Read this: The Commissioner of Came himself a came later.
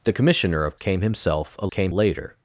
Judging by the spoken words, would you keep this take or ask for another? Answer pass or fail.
pass